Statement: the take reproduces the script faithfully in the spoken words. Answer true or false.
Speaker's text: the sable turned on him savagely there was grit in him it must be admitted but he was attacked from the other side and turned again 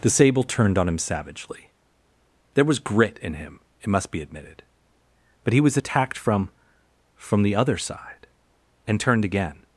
false